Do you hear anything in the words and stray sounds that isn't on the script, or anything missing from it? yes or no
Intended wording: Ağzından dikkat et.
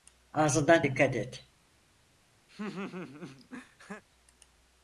yes